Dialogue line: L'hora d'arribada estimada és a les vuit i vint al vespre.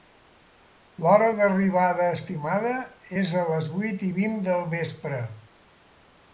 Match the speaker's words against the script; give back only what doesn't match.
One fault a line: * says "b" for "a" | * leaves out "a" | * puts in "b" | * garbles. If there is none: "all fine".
* says "del" for "al"